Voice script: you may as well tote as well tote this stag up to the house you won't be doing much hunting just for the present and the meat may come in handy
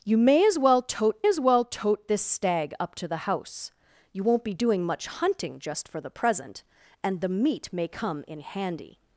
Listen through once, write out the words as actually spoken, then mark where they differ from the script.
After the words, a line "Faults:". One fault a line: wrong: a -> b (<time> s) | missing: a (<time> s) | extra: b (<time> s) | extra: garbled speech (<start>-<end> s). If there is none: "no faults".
you may as well tote as well tote this stag up to the house you won't be doing much hunting just for the present and the meat may come in handy
Faults:
no faults